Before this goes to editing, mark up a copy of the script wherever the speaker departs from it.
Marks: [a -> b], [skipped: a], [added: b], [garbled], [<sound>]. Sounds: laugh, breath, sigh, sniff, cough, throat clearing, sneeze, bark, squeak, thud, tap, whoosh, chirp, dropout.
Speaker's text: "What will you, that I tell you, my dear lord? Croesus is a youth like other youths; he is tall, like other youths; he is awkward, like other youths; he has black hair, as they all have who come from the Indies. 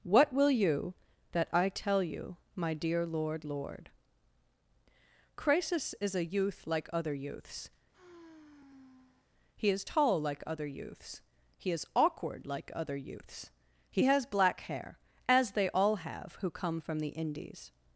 "What will you, that I tell you, my dear lord? [added: lord] Croesus is a youth like other youths; [sigh] he is tall, like other youths; he is awkward, like other youths; he has black hair, as they all have who come from the Indies.